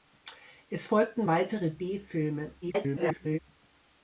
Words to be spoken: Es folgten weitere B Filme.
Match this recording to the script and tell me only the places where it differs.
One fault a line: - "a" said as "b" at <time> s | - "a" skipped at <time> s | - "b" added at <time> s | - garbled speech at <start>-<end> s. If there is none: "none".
- garbled speech at 2.6-3.4 s